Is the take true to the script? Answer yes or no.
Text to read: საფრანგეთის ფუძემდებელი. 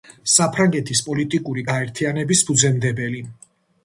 no